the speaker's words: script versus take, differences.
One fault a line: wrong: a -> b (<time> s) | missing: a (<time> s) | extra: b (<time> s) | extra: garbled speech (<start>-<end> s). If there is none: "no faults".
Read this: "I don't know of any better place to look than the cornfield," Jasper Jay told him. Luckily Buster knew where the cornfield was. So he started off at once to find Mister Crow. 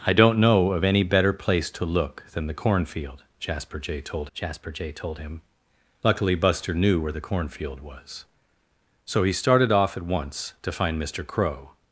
extra: Jasper Jay told (4.3 s)